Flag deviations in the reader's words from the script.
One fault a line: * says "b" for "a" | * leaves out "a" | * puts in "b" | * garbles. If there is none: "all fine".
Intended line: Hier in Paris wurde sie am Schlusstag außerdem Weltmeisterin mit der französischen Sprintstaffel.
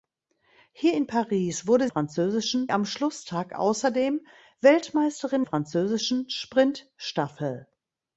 * says "französischen" for "sie"
* leaves out "mit der"